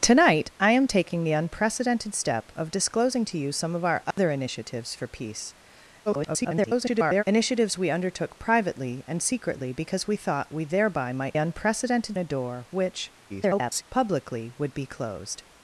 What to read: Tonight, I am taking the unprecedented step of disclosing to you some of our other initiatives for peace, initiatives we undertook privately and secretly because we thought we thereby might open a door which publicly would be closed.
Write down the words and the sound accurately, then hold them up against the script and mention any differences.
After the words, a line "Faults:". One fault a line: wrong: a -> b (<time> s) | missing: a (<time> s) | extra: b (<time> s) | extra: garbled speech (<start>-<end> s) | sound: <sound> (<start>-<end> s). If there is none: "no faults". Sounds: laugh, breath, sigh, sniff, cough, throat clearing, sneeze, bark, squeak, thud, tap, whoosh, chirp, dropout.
Tonight, I am taking the unprecedented step of disclosing to you some of our other initiatives for peace, [garbled] initiatives we undertook privately and secretly because we thought we thereby might unprecedented a door which [garbled] publicly would be closed.
Faults:
sound: dropout (4.1-4.2 s)
extra: garbled speech (6.1-7.2 s)
wrong: open -> unprecedented (11.4 s)
extra: garbled speech (13.3-13.8 s)